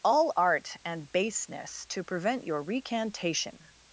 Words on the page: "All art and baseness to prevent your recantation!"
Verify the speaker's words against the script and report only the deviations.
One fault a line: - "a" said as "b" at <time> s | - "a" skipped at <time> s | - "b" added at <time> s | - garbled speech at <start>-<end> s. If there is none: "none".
none